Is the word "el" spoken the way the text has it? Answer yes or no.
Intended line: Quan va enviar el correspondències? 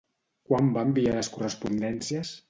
no